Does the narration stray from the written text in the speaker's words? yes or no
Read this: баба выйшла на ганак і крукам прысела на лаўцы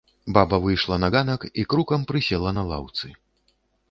no